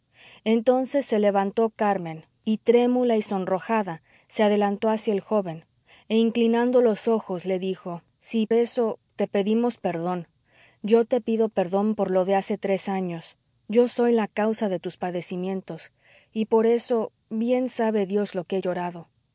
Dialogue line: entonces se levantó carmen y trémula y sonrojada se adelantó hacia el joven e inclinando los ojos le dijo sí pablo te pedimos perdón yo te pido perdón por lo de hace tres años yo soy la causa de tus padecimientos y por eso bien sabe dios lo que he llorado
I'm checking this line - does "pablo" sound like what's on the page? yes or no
no